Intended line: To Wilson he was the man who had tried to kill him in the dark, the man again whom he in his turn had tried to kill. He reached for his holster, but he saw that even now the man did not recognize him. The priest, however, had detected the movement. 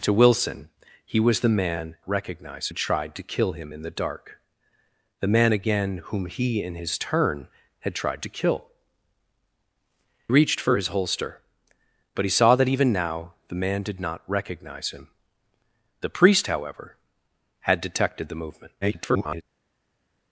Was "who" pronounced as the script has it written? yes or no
no